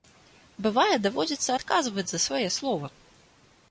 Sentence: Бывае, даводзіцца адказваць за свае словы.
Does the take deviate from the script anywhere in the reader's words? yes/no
no